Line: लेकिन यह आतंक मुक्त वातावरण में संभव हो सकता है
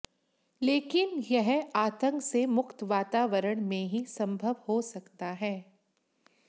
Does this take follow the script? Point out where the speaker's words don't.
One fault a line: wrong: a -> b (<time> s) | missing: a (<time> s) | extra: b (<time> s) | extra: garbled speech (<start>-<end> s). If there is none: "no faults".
extra: से (2.2 s)
extra: ही (3.9 s)